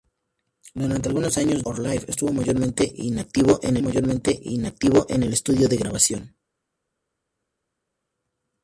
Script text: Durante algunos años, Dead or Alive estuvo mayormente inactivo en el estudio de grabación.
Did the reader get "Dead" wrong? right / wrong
wrong